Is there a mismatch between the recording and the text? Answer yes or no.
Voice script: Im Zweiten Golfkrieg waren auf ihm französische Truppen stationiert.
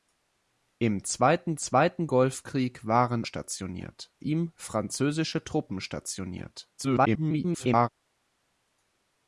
yes